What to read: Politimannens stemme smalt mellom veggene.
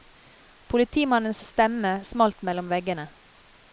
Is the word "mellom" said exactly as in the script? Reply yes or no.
yes